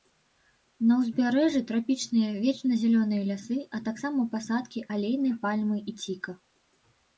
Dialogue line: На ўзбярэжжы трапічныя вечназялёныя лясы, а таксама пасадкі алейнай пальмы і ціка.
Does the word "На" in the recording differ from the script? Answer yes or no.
no